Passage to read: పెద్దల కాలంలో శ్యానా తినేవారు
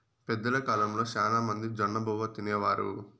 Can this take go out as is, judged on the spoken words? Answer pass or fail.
fail